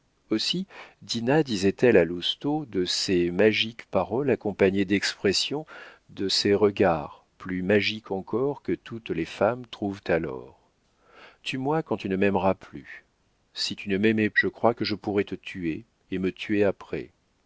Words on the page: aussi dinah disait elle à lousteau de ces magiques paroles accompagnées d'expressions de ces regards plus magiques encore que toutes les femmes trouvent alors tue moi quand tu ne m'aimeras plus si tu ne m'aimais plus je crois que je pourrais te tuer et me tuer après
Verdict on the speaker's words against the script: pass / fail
fail